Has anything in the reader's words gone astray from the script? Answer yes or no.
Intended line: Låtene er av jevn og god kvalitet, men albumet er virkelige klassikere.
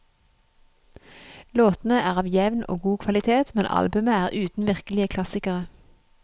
yes